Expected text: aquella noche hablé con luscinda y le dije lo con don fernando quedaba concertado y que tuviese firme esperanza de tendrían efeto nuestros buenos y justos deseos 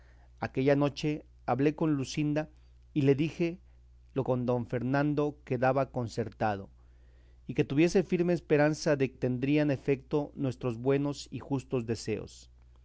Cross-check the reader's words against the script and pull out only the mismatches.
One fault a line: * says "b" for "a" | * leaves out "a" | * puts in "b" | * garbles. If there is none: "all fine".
all fine